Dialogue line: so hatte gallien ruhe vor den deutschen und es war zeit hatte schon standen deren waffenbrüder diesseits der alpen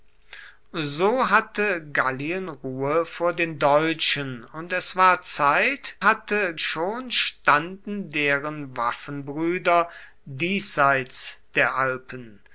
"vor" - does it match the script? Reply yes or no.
yes